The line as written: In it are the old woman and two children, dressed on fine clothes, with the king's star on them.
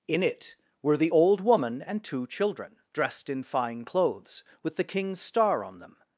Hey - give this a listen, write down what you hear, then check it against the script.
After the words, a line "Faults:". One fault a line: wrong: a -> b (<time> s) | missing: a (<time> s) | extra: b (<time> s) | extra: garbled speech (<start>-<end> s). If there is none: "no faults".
In it were the old woman and two children, dressed in fine clothes, with the king's star on them.
Faults:
wrong: are -> were (0.8 s)
wrong: on -> in (3.3 s)